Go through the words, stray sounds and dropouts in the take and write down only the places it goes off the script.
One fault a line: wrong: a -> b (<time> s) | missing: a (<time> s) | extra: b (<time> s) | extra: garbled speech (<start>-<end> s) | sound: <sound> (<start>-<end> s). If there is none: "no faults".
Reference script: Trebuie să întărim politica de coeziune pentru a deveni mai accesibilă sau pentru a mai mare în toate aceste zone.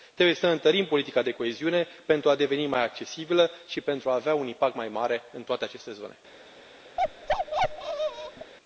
wrong: sau -> și (3.7 s)
extra: avea un impact (4.1 s)
sound: bark (7.0-8.5 s)